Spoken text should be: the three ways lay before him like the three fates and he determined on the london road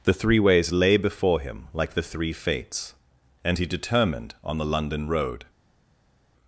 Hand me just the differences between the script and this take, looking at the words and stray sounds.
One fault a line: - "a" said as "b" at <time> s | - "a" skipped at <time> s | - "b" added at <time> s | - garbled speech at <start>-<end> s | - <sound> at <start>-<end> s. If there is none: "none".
none